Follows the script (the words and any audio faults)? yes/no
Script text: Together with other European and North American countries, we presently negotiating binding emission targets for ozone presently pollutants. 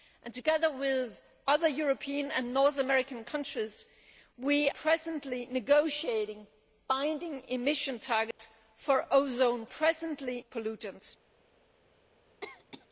no